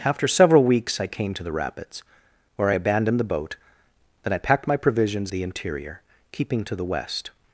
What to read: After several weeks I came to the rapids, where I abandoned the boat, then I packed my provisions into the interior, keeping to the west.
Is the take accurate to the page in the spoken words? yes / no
no